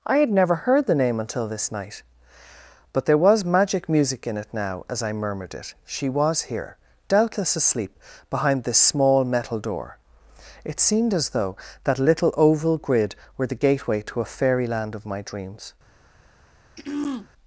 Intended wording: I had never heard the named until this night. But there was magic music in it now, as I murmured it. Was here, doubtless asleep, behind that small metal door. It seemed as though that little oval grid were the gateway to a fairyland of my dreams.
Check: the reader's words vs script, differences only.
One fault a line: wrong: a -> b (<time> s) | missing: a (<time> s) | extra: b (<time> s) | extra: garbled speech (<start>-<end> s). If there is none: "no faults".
wrong: named -> name (1.0 s)
extra: She (5.8 s)
wrong: that -> this (8.6 s)